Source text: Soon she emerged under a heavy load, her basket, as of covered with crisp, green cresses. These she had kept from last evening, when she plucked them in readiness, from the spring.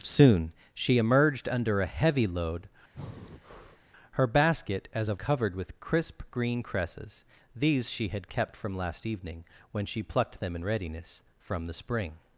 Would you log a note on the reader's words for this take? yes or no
no